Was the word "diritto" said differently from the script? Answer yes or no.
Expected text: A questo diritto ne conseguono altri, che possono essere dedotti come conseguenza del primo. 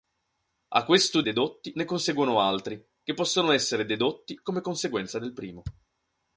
yes